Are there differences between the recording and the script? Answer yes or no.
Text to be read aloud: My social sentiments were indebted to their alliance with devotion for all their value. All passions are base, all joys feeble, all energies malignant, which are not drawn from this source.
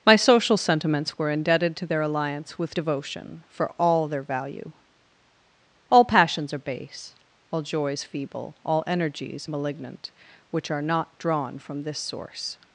no